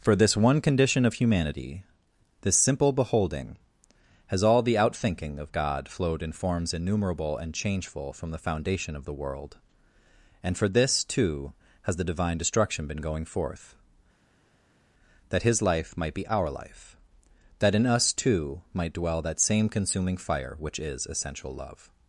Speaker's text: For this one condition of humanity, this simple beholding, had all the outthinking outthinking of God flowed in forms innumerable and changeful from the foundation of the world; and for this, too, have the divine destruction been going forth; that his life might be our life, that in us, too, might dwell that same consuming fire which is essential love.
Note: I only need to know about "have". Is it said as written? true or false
false